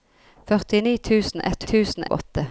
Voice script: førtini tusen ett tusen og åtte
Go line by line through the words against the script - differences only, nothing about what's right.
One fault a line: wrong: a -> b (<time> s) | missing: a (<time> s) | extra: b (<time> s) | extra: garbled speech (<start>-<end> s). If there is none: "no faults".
no faults